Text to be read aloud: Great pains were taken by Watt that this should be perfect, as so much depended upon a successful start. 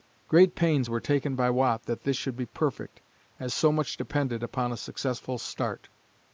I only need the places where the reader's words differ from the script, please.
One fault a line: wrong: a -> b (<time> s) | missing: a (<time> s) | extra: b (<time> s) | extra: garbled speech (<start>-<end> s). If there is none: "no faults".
no faults